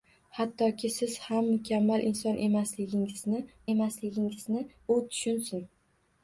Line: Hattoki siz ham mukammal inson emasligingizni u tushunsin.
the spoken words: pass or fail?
fail